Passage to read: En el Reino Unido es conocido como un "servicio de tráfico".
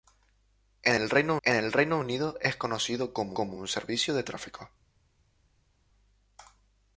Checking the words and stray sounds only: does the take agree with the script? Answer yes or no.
no